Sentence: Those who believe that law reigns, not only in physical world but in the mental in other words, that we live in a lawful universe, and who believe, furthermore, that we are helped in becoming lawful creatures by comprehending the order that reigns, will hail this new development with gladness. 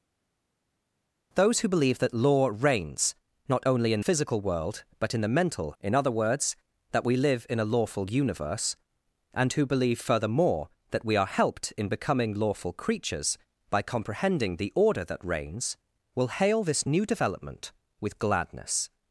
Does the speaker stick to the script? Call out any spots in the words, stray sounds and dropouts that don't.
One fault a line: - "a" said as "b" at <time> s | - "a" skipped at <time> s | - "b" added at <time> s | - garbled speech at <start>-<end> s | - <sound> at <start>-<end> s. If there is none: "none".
none